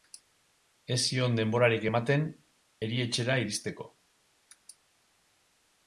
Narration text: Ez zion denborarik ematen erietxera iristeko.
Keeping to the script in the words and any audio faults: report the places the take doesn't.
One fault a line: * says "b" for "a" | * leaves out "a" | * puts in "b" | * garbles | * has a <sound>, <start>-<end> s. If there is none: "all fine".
all fine